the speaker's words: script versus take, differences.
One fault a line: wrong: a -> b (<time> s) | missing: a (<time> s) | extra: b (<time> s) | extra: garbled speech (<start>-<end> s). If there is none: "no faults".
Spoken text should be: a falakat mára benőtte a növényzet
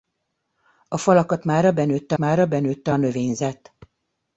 extra: mára benőtte (2.2 s)